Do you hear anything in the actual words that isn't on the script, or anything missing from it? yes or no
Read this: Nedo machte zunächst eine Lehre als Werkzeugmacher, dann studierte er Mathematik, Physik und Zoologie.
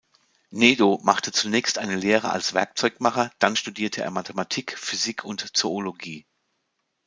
no